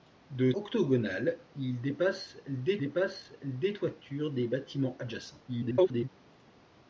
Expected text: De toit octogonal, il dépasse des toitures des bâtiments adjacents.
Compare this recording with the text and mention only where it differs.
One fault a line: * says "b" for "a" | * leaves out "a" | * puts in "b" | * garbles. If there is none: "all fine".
* leaves out "toit"
* puts in "dépasse des"
* garbles